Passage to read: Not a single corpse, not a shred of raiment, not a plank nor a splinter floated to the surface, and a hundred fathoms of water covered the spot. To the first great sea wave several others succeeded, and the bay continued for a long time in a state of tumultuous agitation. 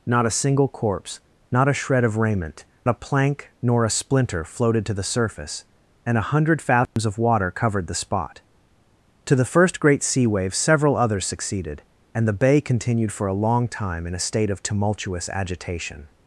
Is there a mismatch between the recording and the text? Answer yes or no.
yes